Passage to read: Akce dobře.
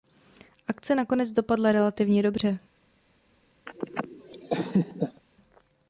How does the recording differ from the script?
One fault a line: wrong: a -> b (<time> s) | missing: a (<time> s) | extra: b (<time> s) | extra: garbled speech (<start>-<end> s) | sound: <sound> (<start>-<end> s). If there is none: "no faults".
extra: nakonec dopadla relativně (0.9 s)
sound: laugh (3.7-5.2 s)